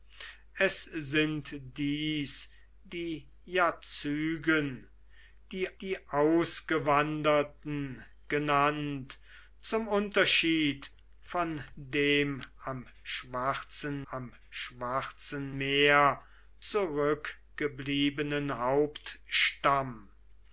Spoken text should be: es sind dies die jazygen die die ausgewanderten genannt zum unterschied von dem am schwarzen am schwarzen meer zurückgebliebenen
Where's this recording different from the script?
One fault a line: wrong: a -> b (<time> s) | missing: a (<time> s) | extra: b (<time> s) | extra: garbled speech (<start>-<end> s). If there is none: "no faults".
no faults